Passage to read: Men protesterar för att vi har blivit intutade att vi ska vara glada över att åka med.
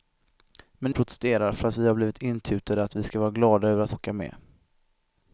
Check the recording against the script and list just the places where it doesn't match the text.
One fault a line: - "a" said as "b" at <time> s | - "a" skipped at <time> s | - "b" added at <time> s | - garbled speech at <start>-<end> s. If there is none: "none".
none